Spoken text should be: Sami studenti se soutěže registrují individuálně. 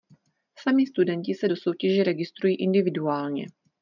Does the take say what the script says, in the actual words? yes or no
no